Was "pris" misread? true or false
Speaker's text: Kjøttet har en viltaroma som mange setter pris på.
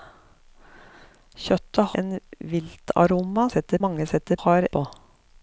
true